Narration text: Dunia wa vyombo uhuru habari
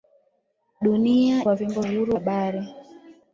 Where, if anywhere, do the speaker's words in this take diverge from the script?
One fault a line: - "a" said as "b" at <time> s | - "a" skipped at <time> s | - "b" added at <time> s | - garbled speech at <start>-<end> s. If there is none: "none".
none